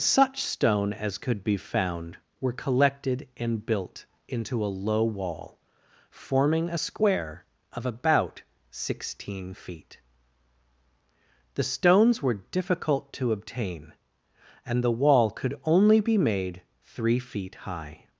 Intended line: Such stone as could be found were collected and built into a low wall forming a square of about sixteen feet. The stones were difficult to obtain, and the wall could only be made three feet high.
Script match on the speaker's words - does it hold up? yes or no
yes